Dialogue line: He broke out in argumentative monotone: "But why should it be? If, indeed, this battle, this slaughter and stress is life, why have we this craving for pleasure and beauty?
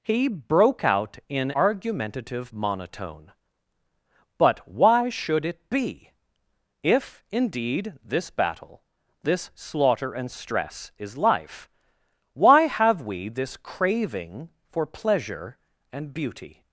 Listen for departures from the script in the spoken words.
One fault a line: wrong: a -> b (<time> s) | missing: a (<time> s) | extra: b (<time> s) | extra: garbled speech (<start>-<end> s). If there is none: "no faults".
no faults